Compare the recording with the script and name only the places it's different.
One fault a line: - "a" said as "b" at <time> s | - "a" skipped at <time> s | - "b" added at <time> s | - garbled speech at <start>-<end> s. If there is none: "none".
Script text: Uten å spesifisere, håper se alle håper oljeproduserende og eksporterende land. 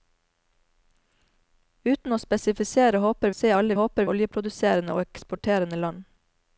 none